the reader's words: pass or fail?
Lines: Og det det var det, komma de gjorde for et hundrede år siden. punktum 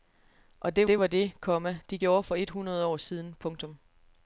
pass